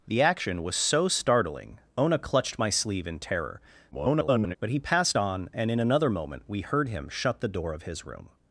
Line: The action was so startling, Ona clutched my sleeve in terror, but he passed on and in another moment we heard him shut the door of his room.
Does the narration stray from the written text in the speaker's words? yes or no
yes